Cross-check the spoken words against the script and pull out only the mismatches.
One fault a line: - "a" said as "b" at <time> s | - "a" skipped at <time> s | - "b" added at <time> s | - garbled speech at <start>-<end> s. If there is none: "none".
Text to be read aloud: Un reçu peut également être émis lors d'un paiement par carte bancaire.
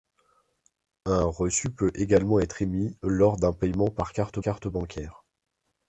- "carte" added at 4.4 s